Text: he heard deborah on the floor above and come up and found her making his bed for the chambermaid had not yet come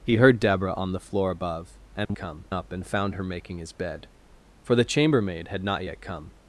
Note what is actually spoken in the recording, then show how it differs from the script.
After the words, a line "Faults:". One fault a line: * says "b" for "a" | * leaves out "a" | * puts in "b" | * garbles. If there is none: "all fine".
he heard deborah on the floor above and come up and found her making his bed for the chambermaid had not yet come
Faults:
all fine